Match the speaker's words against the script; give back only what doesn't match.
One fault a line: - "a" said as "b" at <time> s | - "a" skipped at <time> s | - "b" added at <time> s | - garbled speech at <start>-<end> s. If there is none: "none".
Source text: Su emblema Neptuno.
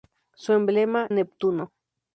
none